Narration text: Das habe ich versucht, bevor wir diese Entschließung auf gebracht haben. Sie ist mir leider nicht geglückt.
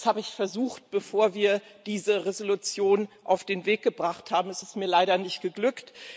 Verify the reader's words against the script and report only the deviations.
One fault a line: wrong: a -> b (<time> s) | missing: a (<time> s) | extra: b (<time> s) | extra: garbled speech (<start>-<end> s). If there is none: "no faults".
extra: den Weg (3.4 s)
wrong: Sie -> Es (4.5 s)